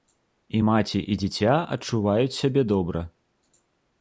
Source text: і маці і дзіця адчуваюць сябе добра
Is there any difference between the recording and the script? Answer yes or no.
no